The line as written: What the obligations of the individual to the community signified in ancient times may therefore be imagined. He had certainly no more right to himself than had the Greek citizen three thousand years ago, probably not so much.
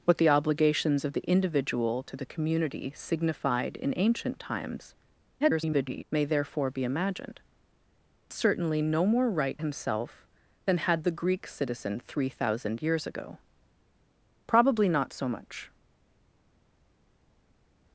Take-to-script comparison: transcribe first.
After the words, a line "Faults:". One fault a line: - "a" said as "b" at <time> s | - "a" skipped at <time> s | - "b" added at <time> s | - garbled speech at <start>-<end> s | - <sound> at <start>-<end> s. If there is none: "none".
What the obligations of the individual to the community signified in ancient times [garbled] may therefore be imagined. Certainly no more right himself than had the Greek citizen three thousand years ago, probably not so much.
Faults:
- garbled speech at 5.4-6.0 s
- "He had" skipped at 7.4 s
- "to" skipped at 9.6 s